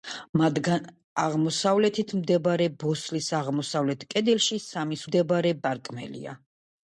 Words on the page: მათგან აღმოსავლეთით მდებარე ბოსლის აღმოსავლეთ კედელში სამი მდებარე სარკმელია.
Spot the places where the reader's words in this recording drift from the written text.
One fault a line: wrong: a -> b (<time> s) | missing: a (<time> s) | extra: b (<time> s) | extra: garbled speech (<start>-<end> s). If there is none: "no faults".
no faults